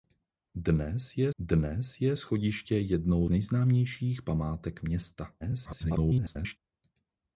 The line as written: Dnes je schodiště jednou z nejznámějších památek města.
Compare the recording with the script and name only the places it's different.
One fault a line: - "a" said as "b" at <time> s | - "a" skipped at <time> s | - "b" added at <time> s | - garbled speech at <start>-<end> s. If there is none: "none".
- "dnes je" added at 1.4 s
- "z" skipped at 3.3 s
- garbled speech at 5.4-6.6 s